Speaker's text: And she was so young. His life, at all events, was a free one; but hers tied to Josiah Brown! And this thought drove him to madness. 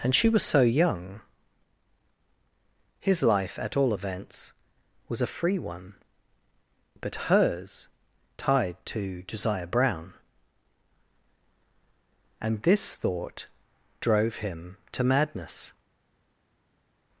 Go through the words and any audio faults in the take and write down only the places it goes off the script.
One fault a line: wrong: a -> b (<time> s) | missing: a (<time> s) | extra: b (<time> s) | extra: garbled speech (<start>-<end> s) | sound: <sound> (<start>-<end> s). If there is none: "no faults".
no faults